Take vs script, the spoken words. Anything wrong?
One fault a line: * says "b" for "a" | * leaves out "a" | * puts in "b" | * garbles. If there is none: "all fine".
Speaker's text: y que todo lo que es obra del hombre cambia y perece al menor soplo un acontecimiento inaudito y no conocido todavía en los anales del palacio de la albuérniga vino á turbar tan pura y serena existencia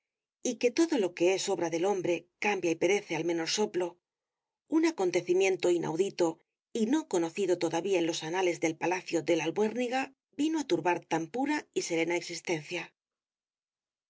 all fine